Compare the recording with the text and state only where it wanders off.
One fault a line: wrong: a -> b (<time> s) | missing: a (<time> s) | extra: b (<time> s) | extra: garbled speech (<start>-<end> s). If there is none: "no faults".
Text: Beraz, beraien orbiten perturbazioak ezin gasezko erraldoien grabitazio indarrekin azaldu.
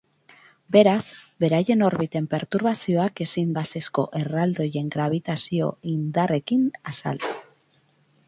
no faults